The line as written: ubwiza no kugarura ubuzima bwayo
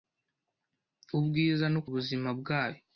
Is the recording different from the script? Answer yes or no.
yes